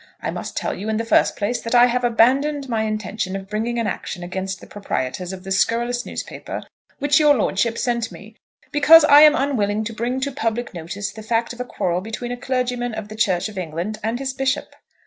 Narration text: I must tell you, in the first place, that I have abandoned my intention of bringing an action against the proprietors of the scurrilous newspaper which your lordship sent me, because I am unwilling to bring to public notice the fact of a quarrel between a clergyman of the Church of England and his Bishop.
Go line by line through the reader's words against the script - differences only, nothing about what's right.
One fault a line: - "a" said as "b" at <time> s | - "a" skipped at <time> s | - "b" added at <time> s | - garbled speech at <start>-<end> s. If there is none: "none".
none